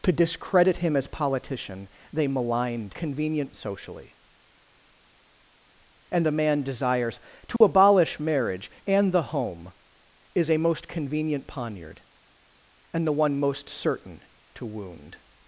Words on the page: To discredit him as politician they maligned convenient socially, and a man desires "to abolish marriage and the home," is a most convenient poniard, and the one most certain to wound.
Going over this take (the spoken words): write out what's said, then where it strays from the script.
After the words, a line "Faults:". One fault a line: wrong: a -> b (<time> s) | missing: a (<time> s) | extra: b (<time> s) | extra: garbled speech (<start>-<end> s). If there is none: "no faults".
To discredit him as politician they maligned convenient socially, and a man desires "to abolish marriage and the home," is a most convenient poniard, and the one most certain to wound.
Faults:
no faults